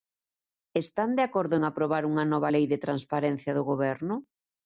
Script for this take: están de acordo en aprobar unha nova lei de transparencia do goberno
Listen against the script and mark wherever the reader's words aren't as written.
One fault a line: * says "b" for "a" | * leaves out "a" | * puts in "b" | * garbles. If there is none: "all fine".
all fine